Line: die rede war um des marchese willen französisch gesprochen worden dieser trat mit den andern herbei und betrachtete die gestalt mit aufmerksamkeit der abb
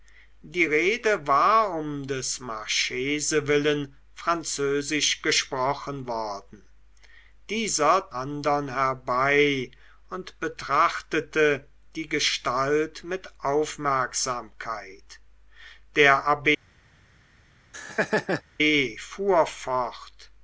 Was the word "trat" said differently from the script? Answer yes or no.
yes